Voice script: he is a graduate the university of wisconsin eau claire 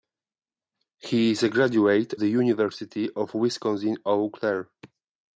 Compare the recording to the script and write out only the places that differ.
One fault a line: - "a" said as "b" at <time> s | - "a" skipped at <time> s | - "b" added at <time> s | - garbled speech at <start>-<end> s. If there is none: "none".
none